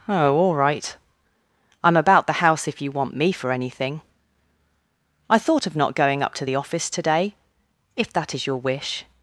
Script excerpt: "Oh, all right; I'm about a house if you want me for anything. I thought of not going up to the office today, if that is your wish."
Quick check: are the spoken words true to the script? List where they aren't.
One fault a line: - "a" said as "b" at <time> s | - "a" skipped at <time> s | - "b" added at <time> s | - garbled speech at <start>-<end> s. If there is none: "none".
- "a" said as "the" at 2.2 s